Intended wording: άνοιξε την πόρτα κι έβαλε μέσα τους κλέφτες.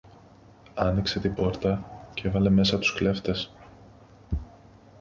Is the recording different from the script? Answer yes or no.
no